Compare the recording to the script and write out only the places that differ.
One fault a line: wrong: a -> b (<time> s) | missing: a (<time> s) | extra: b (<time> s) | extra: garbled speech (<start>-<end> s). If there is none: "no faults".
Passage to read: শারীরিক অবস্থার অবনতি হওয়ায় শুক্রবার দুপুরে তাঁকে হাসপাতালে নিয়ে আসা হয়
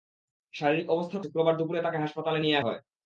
missing: অবনতি হওয়ায় (1.2 s)
missing: আসা (2.6 s)